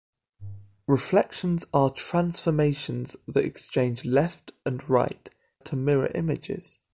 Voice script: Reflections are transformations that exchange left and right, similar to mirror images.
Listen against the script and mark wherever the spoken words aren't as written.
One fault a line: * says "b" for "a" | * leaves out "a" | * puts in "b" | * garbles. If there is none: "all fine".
* leaves out "similar"